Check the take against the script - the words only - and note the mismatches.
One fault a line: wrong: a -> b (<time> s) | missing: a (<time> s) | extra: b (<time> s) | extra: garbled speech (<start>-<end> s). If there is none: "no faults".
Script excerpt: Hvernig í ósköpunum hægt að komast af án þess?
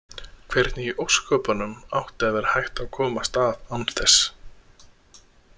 extra: átti að vera (2.0 s)